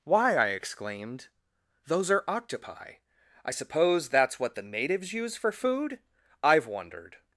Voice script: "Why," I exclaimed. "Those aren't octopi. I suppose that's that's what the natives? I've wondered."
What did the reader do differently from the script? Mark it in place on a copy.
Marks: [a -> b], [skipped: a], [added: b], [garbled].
"Why," I exclaimed. "Those [aren't -> are] octopi. I suppose that's [skipped: that's] what the natives? [added: use for food] I've wondered."